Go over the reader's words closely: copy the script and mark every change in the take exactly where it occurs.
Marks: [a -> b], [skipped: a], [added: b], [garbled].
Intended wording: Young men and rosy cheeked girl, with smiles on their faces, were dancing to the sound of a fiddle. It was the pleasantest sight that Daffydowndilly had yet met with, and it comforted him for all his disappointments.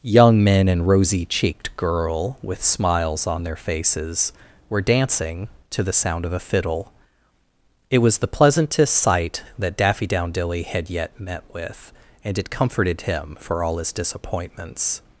Young men and rosy cheeked girl, with smiles on their faces, were dancing to the sound of a fiddle. It was the pleasantest sight that Daffydowndilly had yet met with, and it comforted him for all his disappointments.